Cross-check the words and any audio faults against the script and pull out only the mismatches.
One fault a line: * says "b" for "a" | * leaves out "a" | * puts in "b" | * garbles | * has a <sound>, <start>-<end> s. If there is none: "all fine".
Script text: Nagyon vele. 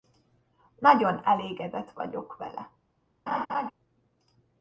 * puts in "elégedett vagyok"
* has a laugh, 3.3-3.7 s